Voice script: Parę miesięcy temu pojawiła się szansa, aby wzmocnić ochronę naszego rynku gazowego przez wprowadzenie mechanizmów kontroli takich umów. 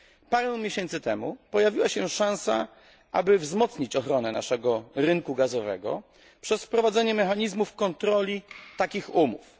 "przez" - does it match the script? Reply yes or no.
yes